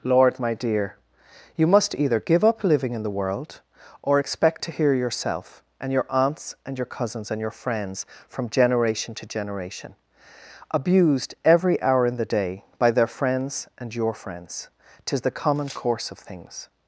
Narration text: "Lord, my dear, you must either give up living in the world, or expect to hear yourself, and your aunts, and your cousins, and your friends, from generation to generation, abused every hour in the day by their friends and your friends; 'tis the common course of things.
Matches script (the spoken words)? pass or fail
pass